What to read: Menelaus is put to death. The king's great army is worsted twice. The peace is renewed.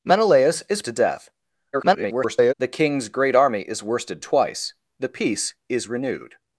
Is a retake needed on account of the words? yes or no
yes